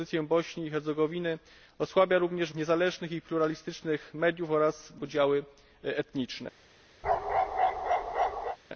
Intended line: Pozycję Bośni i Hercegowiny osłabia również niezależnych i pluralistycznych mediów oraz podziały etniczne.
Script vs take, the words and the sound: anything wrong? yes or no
yes